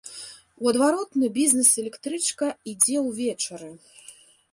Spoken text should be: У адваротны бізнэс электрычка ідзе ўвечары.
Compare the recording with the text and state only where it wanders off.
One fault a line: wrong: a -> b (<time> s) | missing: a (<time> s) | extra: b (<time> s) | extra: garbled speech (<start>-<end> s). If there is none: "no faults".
no faults